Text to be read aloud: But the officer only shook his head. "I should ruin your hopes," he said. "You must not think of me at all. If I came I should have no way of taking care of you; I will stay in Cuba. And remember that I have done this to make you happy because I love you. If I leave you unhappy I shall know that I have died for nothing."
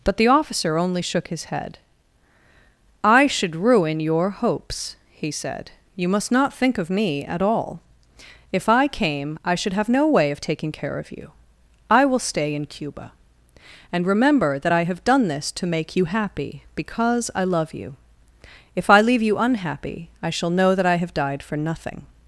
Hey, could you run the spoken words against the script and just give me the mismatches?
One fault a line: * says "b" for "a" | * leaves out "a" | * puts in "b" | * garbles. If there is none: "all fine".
all fine